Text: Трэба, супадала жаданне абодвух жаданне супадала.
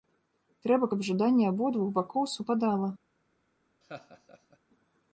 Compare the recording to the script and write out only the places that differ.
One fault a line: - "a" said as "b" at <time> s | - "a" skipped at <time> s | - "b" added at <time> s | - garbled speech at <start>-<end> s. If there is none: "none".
- "супадала" said as "каб" at 0.9 s
- "жаданне" said as "бакоў" at 2.0 s